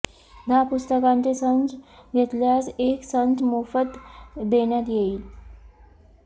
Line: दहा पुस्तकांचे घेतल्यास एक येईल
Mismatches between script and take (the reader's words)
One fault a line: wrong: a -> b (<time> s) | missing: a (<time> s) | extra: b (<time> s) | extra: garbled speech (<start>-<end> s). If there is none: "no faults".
extra: संच (1.3 s)
extra: संच मोफत देण्यात (3.0 s)